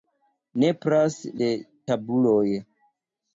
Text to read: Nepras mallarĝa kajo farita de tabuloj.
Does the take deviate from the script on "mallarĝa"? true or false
true